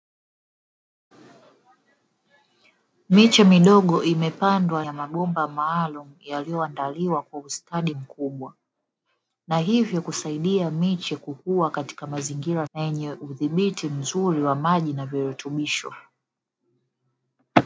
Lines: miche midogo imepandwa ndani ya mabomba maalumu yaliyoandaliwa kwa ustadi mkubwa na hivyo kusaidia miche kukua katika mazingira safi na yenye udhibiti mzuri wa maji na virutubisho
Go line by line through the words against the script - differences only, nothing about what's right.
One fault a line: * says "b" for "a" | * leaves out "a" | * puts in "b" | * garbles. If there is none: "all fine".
* leaves out "ndani"
* leaves out "safi"